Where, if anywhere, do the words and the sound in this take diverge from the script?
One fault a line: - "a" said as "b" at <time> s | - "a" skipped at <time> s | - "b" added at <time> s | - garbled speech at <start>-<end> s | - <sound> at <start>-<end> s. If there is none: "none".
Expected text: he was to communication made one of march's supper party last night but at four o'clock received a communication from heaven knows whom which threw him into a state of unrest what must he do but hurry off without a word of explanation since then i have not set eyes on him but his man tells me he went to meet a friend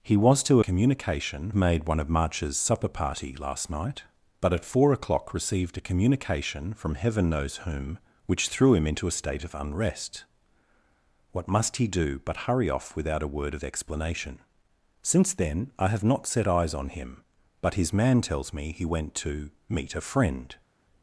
none